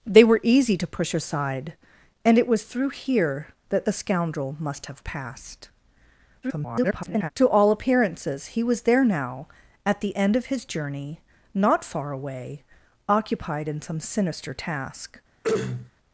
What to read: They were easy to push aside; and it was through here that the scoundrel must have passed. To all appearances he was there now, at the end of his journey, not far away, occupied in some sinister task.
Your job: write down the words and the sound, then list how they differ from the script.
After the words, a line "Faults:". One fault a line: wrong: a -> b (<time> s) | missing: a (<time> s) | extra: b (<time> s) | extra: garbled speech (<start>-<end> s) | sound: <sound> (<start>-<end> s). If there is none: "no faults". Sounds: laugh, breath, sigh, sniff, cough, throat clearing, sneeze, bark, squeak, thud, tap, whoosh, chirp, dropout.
They were easy to push aside; and it was through here that the scoundrel must have passed. [garbled] To all appearances he was there now, at the end of his journey, not far away, occupied in some sinister task.
Faults:
extra: garbled speech (6.4-7.3 s)
sound: throat clearing (15.4-15.9 s)